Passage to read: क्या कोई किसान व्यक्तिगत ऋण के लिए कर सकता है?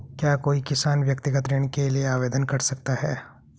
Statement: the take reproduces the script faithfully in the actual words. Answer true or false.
false